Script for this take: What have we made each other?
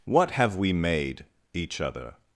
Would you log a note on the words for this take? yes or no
no